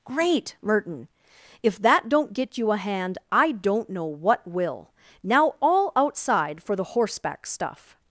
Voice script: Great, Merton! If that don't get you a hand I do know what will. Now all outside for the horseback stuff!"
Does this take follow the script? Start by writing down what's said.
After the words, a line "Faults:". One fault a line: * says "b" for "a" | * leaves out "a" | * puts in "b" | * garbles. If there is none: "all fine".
Great, Merton! If that don't get you a hand I don't know what will. Now all outside for the horseback stuff!"
Faults:
* says "don't" for "do"